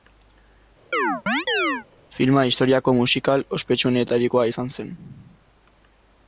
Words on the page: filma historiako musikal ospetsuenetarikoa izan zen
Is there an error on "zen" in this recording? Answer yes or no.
no